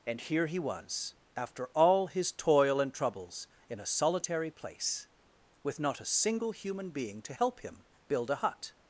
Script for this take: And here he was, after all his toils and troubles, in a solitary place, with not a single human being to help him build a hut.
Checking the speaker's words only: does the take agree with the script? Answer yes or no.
no